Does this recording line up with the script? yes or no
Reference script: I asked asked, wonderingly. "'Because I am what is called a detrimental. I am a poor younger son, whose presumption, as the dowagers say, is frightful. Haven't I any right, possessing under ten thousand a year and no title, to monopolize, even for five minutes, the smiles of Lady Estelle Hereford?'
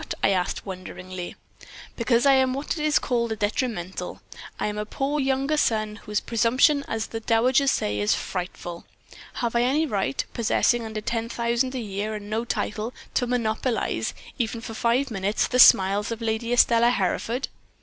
no